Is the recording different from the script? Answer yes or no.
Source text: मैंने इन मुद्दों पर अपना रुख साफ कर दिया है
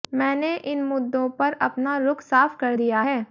no